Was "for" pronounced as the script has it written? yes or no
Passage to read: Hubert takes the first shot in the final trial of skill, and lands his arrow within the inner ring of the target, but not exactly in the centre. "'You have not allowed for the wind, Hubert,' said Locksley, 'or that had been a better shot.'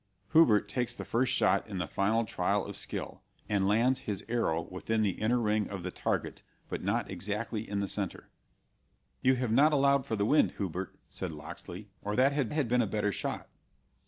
yes